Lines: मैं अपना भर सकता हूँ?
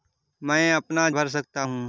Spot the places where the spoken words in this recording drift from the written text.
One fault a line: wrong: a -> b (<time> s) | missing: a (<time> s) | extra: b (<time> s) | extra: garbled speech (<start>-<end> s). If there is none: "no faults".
no faults